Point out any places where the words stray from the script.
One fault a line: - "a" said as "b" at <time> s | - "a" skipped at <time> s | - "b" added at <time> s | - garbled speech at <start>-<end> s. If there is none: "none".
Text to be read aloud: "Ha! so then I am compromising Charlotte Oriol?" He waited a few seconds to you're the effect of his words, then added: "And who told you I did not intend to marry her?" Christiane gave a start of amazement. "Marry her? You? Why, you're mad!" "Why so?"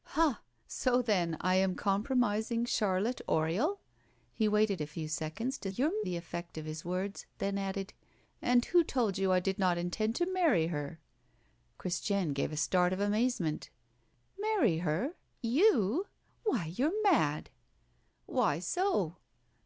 none